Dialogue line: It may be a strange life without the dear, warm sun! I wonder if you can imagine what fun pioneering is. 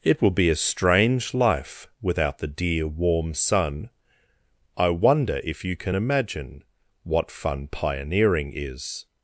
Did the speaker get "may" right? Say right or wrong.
wrong